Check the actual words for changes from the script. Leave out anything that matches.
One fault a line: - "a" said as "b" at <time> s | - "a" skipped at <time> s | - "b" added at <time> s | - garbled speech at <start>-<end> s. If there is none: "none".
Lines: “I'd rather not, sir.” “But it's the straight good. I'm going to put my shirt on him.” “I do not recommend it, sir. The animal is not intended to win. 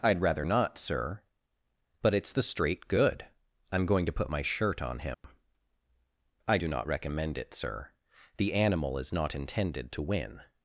none